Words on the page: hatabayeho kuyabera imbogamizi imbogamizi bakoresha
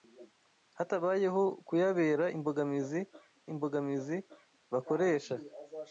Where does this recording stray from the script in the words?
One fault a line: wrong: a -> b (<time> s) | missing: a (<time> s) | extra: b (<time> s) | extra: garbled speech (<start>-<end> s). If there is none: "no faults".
no faults